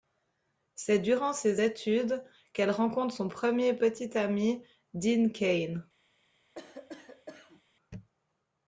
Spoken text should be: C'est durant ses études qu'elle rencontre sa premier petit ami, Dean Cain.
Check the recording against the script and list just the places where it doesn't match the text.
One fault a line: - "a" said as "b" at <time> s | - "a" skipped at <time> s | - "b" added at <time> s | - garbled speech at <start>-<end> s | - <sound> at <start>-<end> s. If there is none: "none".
- "sa" said as "son" at 3.1 s
- cough at 6.5-7.6 s